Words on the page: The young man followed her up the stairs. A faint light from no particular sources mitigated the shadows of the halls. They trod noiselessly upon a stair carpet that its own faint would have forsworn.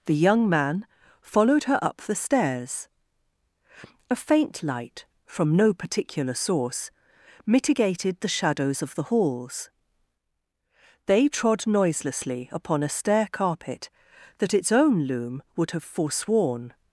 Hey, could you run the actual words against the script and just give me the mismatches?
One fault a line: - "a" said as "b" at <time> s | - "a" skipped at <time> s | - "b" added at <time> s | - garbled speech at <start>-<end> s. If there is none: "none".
- "sources" said as "source" at 6.3 s
- "faint" said as "loom" at 15.0 s